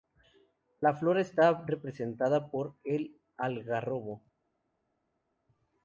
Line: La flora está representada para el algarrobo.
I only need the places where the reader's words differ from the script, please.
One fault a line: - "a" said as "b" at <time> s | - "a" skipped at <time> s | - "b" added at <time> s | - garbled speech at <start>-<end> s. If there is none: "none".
- "para" said as "por" at 2.5 s